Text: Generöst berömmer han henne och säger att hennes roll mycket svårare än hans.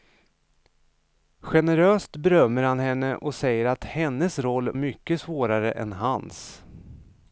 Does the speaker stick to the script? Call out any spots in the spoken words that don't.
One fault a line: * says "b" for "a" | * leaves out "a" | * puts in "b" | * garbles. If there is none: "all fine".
all fine